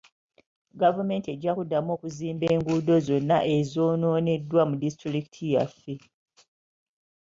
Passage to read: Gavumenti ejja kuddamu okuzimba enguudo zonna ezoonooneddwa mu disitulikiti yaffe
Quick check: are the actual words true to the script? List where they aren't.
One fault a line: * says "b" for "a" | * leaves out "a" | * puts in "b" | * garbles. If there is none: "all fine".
all fine